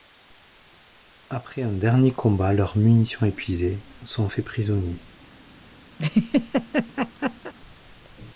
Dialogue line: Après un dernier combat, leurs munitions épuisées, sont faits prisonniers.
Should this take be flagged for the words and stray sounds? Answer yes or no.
yes